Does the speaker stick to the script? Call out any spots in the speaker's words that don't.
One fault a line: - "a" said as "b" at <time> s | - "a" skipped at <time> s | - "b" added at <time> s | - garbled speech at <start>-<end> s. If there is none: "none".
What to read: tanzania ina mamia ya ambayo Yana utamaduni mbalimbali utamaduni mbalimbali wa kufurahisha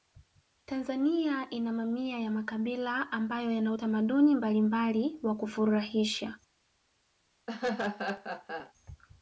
- "makabila" added at 2.3 s
- "utamaduni mbalimbali" skipped at 5.2 s